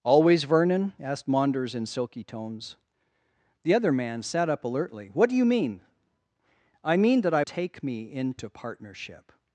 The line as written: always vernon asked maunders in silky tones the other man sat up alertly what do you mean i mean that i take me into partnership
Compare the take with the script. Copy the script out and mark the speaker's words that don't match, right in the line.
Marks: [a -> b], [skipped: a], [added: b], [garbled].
always vernon asked maunders in silky tones the other man sat up alertly what do you mean i mean that i take me into partnership